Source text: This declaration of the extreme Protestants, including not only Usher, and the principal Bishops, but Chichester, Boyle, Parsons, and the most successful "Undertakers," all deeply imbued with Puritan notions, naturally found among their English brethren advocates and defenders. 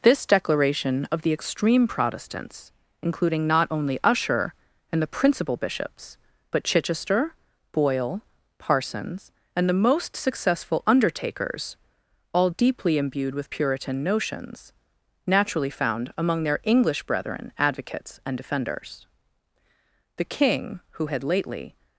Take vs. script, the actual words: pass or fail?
fail